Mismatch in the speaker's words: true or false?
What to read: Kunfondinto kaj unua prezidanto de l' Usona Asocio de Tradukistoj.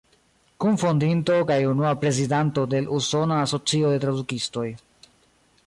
false